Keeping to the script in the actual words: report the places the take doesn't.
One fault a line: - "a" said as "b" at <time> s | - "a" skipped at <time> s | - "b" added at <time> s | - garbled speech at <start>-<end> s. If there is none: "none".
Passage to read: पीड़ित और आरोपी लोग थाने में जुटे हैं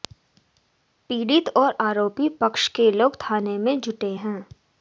- "पक्ष के" added at 2.4 s